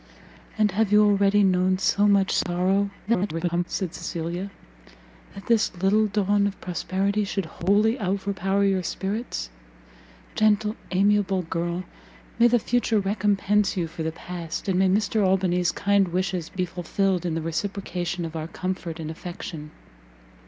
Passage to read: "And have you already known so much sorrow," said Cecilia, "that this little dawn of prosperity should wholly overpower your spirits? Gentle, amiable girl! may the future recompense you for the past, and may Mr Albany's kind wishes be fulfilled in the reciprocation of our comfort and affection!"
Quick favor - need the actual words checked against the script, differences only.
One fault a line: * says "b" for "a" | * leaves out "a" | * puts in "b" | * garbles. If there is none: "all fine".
* garbles